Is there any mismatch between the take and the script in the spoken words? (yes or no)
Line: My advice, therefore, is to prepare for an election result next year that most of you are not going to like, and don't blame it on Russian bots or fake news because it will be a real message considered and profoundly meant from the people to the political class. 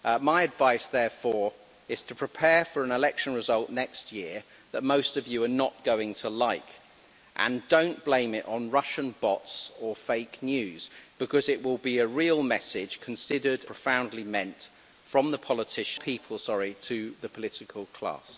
yes